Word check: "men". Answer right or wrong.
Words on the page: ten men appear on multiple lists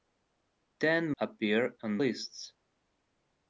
wrong